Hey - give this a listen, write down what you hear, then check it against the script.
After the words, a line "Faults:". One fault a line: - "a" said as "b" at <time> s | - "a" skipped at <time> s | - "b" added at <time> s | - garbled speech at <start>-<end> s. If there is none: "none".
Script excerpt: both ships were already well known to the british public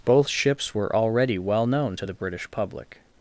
both ships were already well known to the british public
Faults:
none